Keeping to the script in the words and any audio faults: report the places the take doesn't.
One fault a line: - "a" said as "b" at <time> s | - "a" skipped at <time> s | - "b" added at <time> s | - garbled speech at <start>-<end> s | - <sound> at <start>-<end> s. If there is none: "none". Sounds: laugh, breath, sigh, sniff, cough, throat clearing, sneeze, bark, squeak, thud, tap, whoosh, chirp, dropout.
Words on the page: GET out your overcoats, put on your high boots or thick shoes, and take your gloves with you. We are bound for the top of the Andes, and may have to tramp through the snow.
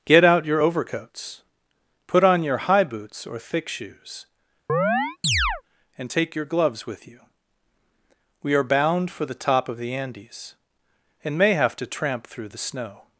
- chirp at 4.7-5.6 s